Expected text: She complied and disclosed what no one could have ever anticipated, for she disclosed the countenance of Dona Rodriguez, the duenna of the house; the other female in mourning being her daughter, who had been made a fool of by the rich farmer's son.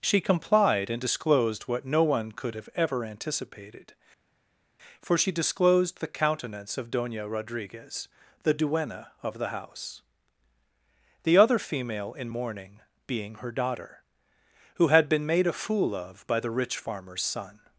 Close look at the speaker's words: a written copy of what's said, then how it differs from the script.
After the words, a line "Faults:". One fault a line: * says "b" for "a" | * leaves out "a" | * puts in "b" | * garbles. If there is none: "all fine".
She complied and disclosed what no one could have ever anticipated, for she disclosed the countenance of Dona Rodriguez, the duenna of the house; the other female in mourning being her daughter, who had been made a fool of by the rich farmer's son.
Faults:
all fine